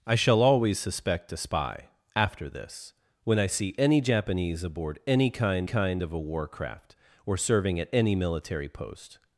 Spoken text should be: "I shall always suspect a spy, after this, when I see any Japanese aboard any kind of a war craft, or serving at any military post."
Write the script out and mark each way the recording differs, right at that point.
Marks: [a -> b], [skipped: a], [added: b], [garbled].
"I shall always suspect a spy, after this, when I see any Japanese aboard any kind [added: kind] of a war craft, or serving at any military post."